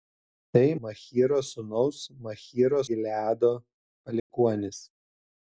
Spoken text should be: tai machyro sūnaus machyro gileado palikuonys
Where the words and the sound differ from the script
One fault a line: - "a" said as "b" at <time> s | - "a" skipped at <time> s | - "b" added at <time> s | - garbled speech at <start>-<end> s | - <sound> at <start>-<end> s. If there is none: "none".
- dropout at 4.2-4.3 s